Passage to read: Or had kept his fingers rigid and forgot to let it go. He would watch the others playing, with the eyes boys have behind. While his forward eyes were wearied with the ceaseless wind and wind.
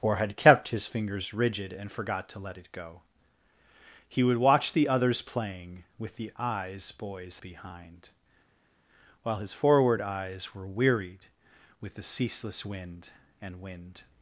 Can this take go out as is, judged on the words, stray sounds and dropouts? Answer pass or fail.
fail